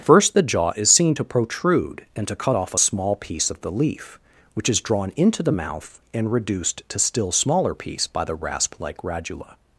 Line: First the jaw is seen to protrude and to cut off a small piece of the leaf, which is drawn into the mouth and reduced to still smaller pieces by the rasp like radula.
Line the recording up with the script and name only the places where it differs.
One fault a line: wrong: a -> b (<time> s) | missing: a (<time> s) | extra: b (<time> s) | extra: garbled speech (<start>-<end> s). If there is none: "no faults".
wrong: pieces -> piece (7.7 s)